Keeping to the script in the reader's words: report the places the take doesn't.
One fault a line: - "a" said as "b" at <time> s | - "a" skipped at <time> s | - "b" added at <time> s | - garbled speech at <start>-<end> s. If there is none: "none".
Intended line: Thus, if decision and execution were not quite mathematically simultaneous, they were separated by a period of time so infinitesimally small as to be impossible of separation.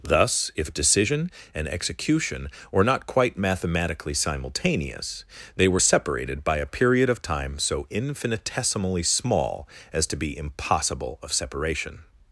none